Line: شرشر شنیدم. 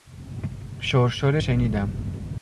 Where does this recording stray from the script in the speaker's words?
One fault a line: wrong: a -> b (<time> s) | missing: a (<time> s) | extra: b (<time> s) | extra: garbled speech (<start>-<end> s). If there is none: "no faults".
no faults